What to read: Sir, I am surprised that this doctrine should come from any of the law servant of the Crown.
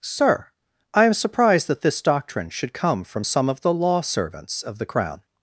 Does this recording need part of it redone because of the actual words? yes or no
yes